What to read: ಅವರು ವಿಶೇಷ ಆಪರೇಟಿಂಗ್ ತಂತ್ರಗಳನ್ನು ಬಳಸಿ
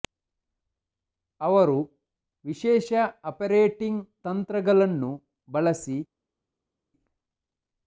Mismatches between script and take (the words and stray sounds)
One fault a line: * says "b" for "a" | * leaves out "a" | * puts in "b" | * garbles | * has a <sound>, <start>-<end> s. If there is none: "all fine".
all fine